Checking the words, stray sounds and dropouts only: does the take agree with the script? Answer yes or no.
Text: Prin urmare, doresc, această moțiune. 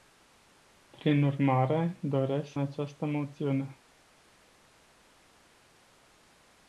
yes